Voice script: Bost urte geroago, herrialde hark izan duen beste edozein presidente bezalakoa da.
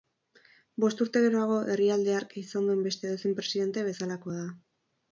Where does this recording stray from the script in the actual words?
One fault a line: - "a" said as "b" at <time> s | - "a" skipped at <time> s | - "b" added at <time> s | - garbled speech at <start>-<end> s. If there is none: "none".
none